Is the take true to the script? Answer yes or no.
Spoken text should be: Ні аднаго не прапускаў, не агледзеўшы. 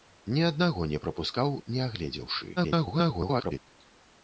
no